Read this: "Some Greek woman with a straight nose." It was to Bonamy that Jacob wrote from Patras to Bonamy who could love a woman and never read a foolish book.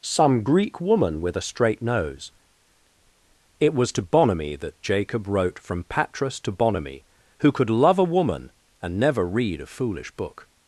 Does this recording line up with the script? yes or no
yes